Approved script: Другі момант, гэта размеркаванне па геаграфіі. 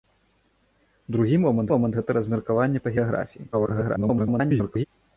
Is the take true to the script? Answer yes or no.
no